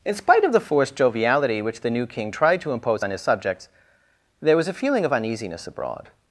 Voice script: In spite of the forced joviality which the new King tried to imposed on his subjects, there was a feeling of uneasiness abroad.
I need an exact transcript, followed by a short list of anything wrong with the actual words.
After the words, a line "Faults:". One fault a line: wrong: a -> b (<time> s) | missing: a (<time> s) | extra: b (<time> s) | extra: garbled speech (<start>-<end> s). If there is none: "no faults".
In spite of the forced joviality which the new King tried to impose on his subjects, there was a feeling of uneasiness abroad.
Faults:
wrong: imposed -> impose (2.7 s)